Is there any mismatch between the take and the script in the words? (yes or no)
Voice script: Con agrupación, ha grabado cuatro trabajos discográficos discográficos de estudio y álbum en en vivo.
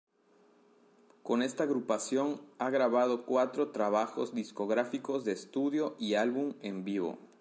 yes